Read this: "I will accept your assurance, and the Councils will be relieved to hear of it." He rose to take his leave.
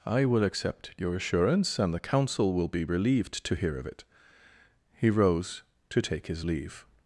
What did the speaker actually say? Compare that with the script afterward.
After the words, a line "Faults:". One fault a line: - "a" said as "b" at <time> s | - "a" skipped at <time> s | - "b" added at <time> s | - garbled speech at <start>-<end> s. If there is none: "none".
"I will accept your assurance, and the Council will be relieved to hear of it." He rose to take his leave.
Faults:
- "Councils" said as "Council" at 2.0 s